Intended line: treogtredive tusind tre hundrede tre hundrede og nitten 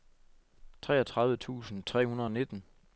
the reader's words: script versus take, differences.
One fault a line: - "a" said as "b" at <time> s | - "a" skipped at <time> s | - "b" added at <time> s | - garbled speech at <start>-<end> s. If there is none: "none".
- "tre hundrede" skipped at 2.3 s